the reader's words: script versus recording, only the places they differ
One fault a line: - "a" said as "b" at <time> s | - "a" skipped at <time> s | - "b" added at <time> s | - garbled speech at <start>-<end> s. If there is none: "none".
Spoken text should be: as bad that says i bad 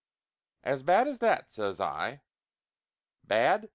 - "as" added at 1.1 s